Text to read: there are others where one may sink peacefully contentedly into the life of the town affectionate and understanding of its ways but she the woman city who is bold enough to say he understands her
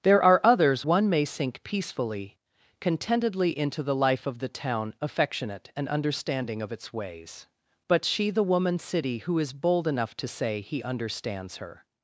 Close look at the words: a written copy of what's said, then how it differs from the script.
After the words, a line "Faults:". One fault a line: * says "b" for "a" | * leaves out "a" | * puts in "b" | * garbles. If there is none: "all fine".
there are others one may sink peacefully contentedly into the life of the town affectionate and understanding of its ways but she the woman city who is bold enough to say he understands her
Faults:
* leaves out "where"